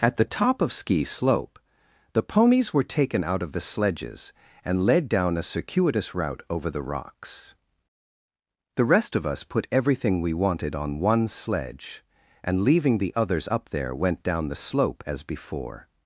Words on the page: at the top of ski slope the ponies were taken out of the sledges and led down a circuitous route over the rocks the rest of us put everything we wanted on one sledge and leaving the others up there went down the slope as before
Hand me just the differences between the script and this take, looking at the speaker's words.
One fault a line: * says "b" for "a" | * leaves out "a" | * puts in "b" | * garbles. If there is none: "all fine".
all fine